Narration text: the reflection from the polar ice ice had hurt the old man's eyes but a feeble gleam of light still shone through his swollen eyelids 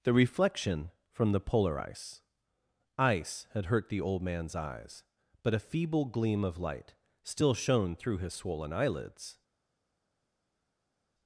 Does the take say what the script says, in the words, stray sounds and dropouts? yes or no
yes